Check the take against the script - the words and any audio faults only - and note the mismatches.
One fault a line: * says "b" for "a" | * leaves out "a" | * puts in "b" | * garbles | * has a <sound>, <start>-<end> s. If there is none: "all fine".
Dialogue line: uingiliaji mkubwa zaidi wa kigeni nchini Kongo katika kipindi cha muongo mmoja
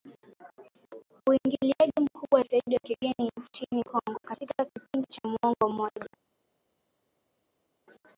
all fine